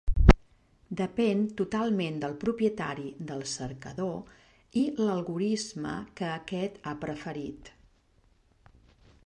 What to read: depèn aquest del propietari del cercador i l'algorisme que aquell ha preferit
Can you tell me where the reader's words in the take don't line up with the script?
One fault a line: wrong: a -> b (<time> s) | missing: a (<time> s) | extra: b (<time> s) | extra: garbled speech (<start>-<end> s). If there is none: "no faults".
wrong: aquest -> totalment (1.6 s)
wrong: aquell -> aquest (6.4 s)